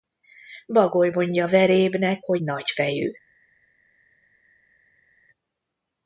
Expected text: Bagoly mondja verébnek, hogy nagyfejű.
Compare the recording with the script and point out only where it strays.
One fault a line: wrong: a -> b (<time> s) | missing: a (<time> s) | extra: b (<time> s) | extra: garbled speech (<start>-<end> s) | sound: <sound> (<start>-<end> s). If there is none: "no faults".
no faults